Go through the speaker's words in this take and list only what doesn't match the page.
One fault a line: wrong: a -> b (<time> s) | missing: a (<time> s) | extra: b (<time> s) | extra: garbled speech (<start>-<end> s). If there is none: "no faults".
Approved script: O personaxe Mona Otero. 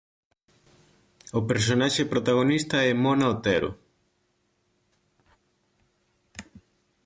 extra: protagonista é (2.0 s)